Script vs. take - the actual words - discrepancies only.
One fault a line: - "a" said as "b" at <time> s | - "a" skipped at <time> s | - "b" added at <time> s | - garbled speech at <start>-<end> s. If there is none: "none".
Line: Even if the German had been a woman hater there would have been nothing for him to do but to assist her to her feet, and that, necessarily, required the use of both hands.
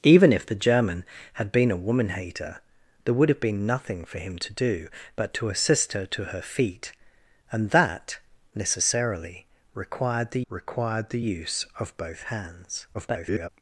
- "required the" added at 10.5 s
- garbled speech at 12.9-13.5 s